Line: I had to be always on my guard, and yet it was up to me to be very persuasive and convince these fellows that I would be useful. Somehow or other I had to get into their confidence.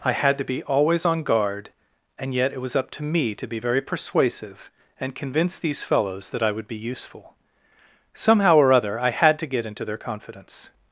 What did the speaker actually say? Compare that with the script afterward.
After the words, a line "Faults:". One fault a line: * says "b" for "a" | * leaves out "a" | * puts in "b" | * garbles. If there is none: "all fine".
I had to be always on guard, and yet it was up to me to be very persuasive and convince these fellows that I would be useful. Somehow or other I had to get into their confidence.
Faults:
* leaves out "my"